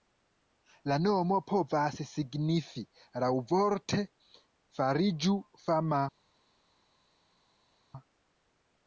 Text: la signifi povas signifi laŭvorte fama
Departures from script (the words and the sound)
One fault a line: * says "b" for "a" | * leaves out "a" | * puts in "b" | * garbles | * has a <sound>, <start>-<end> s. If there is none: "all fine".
* says "nomo" for "signifi"
* puts in "fariĝu"